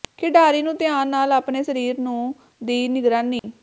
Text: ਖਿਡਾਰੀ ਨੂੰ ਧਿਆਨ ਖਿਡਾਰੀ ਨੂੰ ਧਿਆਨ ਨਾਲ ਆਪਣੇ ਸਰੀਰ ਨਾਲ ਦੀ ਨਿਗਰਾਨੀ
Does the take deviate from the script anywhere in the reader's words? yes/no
yes